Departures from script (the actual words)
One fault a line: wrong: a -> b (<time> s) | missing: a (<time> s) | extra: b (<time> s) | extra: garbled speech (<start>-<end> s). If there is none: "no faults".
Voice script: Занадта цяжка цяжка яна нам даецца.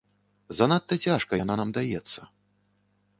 missing: цяжка (1.3 s)